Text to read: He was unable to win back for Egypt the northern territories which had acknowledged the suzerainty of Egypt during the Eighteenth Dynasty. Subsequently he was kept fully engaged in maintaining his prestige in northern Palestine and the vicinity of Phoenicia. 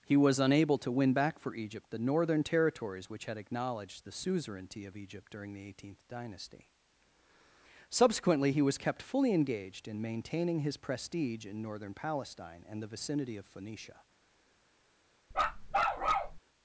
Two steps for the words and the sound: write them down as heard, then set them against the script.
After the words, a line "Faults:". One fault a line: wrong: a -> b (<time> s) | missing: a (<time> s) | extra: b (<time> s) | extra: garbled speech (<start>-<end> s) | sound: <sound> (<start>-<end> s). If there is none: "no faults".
He was unable to win back for Egypt the northern territories which had acknowledged the suzerainty of Egypt during the Eighteenth Dynasty. Subsequently he was kept fully engaged in maintaining his prestige in northern Palestine and the vicinity of Phoenicia.
Faults:
sound: bark (15.3-16.4 s)